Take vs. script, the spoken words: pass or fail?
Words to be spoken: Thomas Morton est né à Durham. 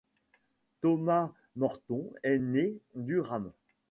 fail